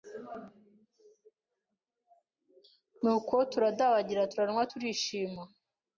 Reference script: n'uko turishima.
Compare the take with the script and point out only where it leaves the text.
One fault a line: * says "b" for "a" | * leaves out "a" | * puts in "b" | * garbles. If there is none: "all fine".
* puts in "turadabagira turanywa"